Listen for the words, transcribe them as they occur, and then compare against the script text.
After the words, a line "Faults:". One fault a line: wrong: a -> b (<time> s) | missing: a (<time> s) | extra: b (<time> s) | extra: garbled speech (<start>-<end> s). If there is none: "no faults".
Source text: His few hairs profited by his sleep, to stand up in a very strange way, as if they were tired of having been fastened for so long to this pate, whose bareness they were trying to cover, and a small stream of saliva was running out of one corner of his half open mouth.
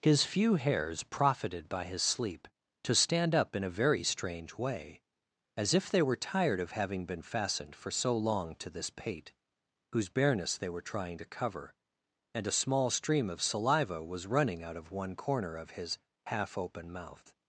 His few hairs profited by his sleep, to stand up in a very strange way, as if they were tired of having been fastened for so long to this pate, whose bareness they were trying to cover, and a small stream of saliva was running out of one corner of his half open mouth.
Faults:
no faults